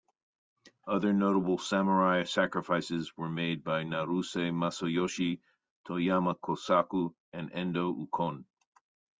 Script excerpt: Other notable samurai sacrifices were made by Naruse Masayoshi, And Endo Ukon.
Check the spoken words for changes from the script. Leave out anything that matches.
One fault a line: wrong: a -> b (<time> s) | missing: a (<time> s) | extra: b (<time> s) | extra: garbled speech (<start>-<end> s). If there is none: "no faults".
extra: Toyama Kosaku (5.9 s)